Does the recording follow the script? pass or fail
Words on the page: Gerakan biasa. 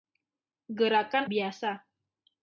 pass